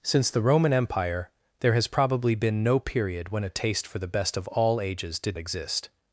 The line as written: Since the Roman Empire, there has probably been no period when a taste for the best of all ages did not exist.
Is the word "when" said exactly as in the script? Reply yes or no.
yes